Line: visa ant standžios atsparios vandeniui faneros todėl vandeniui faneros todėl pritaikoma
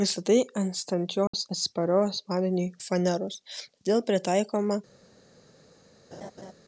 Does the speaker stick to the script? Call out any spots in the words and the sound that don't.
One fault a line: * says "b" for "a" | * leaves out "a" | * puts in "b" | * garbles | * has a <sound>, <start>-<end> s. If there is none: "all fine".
* puts in "tai"
* has a dropout, 1.3-1.3 s
* leaves out "vandeniui faneros todėl"
* has a laugh, 6.1-6.5 s